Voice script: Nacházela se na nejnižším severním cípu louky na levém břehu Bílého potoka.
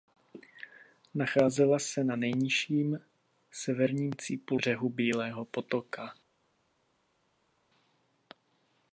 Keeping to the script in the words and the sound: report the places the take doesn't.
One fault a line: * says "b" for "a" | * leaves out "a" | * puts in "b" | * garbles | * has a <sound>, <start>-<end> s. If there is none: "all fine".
* leaves out "louky na levém"